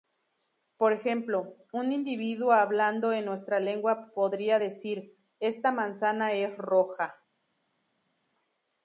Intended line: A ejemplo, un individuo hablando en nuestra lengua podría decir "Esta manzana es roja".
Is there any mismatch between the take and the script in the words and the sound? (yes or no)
yes